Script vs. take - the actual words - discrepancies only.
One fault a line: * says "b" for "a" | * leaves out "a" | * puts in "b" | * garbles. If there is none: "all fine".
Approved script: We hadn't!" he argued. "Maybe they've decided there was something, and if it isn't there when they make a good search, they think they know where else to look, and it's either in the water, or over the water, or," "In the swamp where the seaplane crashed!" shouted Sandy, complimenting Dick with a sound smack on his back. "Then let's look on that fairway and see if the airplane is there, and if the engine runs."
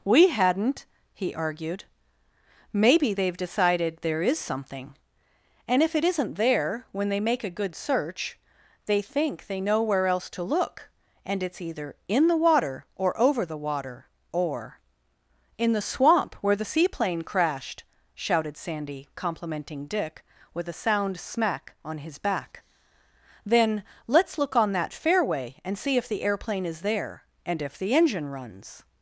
* says "is" for "was"